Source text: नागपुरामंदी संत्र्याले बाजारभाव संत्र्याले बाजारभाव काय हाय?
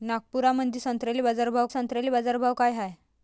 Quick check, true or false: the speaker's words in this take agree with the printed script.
true